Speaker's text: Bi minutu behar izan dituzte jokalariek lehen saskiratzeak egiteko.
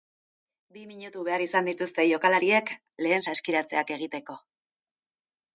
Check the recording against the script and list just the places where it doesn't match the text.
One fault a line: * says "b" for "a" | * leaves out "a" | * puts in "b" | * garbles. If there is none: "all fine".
all fine